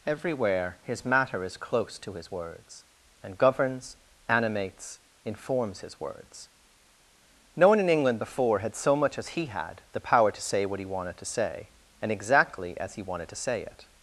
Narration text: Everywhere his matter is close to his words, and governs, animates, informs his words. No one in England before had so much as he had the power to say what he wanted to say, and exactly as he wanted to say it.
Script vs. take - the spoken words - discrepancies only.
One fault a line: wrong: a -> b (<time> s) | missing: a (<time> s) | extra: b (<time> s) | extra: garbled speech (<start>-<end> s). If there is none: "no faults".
no faults